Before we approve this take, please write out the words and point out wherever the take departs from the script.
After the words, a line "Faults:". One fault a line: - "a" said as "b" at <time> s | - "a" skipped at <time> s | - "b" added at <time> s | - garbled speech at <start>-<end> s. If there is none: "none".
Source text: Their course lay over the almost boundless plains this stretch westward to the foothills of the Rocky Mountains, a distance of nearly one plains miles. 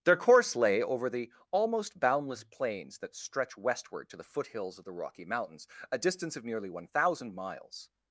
Their course lay over the almost boundless plains that stretch westward to the foothills of the Rocky Mountains, a distance of nearly one thousand miles.
Faults:
- "this" said as "that" at 3.0 s
- "plains" said as "thousand" at 6.8 s